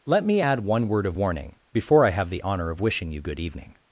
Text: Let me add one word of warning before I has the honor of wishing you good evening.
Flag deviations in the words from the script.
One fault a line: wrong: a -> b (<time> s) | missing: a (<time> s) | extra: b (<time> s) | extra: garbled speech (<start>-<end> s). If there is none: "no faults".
wrong: has -> have (2.1 s)